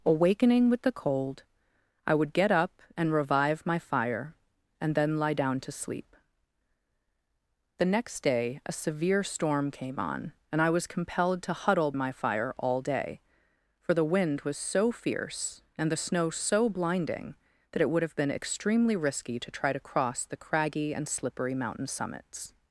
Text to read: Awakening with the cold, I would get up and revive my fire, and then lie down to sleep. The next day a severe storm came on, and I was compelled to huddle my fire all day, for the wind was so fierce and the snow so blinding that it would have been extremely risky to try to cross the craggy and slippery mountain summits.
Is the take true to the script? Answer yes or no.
yes